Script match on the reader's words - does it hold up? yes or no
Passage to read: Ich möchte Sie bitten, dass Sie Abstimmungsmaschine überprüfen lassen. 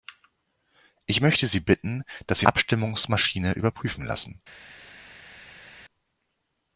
yes